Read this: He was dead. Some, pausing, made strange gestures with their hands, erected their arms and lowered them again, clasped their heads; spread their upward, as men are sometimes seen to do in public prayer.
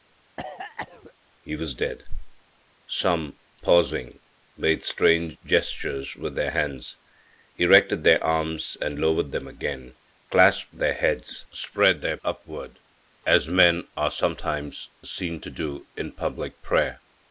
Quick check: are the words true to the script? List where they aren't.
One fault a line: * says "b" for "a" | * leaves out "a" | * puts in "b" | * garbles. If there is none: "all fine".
all fine